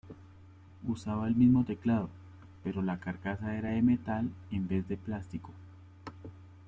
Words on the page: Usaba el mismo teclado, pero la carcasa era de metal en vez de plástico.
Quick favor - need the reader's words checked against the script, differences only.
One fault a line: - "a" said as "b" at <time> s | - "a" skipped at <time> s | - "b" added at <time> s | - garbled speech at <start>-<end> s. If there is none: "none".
none